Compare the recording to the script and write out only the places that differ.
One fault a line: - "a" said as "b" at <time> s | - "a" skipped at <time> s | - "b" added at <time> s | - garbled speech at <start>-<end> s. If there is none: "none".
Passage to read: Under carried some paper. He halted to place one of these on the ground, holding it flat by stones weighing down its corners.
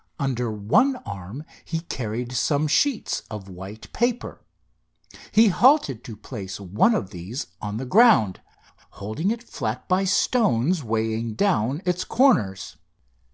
- "one arm he" added at 0.5 s
- "sheets of white" added at 2.7 s